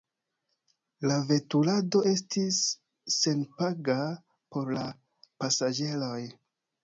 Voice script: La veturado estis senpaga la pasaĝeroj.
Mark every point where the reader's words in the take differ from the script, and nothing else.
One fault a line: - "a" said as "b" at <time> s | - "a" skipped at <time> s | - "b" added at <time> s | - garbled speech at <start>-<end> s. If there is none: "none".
- "por" added at 4.6 s